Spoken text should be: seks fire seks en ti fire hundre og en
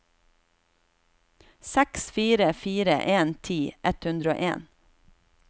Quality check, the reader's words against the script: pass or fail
fail